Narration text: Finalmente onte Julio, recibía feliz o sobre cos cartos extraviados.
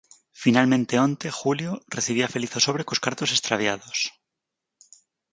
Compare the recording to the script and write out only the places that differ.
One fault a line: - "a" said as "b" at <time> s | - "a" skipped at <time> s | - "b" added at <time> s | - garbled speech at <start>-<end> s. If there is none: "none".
none